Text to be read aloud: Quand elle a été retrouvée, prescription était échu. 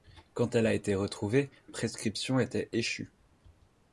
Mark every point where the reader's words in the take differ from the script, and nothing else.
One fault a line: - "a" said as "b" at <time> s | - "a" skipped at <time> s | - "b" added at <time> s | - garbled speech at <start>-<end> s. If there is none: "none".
none